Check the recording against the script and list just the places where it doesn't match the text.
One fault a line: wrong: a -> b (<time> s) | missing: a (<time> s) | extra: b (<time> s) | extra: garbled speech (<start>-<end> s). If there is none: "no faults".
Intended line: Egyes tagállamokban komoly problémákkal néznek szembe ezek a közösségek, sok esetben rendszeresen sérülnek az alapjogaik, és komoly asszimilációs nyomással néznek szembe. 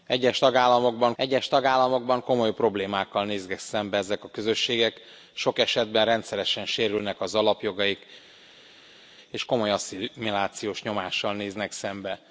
extra: egyes tagállamokban (1.2 s)